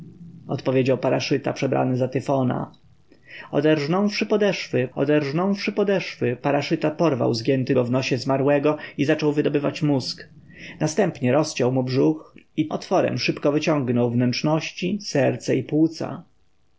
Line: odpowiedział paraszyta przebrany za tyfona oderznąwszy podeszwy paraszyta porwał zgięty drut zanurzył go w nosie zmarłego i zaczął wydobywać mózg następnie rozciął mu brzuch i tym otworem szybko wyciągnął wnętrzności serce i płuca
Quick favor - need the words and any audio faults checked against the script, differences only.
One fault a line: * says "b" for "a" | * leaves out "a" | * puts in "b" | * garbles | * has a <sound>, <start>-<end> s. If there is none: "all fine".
* puts in "oderznąwszy podeszwy"
* leaves out "drut zanurzył"
* leaves out "tym"